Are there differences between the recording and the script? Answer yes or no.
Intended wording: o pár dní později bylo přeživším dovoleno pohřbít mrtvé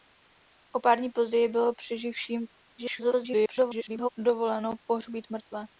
yes